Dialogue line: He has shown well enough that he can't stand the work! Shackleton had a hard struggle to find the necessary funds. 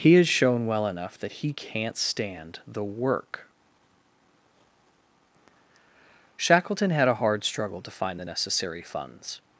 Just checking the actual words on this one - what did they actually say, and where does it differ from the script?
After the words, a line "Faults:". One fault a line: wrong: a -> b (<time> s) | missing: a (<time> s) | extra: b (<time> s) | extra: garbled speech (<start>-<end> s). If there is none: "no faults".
He has shown well enough that he can't stand the work! Shackleton had a hard struggle to find the necessary funds.
Faults:
no faults